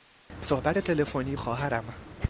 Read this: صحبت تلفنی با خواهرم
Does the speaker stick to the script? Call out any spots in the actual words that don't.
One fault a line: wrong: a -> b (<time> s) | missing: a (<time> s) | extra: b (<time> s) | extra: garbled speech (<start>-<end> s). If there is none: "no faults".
missing: با (1.4 s)